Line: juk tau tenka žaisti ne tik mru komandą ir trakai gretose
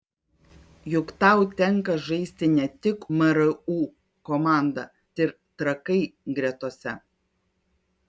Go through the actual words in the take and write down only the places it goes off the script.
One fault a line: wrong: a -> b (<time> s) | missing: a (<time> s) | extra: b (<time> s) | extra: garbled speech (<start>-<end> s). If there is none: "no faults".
no faults